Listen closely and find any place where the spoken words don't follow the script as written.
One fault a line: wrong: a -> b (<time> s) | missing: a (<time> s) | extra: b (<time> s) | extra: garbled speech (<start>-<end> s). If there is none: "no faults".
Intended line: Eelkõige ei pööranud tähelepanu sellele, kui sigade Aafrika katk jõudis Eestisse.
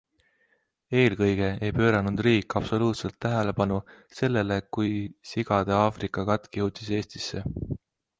extra: riik absoluutselt (2.3 s)